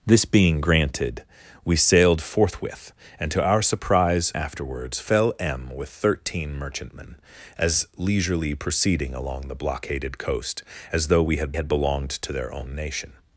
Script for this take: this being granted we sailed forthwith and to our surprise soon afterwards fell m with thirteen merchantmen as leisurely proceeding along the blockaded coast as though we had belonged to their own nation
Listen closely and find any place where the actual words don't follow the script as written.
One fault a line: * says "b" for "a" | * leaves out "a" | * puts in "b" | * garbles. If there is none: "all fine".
* leaves out "soon"
* puts in "had"